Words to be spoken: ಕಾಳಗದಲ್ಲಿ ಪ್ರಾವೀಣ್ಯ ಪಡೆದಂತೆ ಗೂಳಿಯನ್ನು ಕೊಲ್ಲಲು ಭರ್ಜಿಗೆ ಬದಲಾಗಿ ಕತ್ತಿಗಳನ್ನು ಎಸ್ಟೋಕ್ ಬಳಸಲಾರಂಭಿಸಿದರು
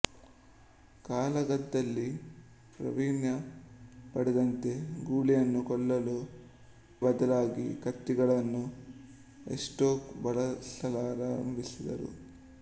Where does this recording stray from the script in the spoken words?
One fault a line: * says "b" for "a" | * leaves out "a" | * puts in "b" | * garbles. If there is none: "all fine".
* leaves out "ಭರ್ಜಿಗೆ"